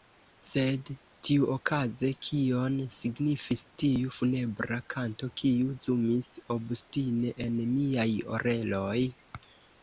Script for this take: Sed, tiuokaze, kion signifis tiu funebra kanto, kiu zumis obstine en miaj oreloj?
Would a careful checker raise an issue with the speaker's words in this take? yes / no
no